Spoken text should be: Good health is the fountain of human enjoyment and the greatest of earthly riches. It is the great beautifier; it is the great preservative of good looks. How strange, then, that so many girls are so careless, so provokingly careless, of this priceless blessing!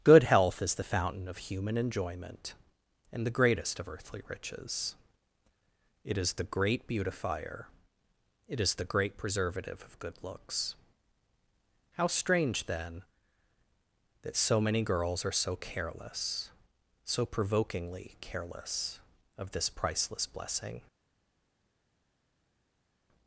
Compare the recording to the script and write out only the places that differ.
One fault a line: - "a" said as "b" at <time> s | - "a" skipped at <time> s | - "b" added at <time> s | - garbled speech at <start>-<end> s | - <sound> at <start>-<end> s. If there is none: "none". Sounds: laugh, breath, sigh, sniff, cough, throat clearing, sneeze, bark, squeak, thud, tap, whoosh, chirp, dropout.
none